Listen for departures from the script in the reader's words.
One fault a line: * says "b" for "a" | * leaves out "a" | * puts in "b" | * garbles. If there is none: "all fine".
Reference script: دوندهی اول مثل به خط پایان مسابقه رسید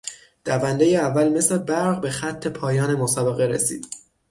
* puts in "برق"